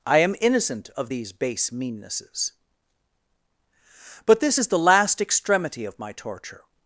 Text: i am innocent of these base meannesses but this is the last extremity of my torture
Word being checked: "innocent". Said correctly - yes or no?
yes